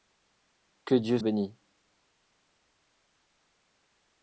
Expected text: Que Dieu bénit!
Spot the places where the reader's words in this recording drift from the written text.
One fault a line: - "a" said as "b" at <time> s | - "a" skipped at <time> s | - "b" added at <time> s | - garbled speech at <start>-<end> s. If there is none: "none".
none